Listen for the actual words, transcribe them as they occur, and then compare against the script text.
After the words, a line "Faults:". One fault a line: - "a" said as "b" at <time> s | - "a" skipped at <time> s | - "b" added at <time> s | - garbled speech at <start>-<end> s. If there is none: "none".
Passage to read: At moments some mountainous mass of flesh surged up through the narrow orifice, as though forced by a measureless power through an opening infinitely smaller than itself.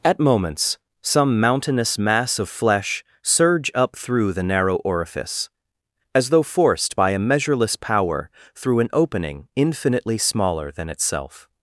At moments some mountainous mass of flesh surge up through the narrow orifice, as though forced by a measureless power through an opening infinitely smaller than itself.
Faults:
- "surged" said as "surge" at 3.2 s